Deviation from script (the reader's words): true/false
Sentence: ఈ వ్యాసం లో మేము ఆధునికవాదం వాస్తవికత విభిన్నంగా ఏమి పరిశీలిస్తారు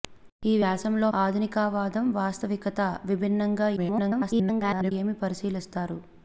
true